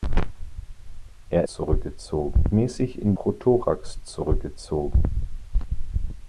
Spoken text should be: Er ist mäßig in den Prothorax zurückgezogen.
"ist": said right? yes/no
no